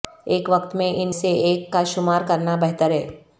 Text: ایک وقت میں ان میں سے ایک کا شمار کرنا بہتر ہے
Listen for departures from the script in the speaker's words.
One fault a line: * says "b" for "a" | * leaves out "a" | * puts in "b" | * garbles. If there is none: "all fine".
* leaves out "میں"